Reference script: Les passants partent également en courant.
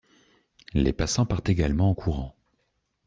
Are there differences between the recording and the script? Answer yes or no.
no